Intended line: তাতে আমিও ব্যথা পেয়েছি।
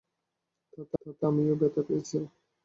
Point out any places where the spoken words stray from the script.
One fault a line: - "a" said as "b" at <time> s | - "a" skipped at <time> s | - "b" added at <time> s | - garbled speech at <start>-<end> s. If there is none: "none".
- "তাতে" added at 1.0 s